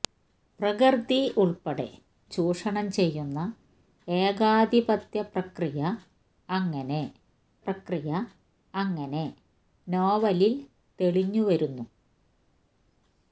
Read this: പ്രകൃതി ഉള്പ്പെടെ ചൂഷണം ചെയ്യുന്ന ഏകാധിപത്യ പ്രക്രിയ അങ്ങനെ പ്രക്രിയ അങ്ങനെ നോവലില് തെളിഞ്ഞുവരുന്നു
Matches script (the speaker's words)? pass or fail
pass